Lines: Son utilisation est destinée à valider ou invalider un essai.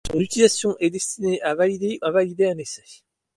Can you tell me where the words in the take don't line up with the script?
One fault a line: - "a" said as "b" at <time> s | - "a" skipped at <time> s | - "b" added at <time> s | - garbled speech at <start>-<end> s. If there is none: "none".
- "ou" skipped at 2.0 s